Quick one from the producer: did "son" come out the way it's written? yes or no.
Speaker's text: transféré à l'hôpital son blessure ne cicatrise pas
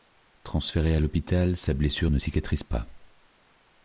no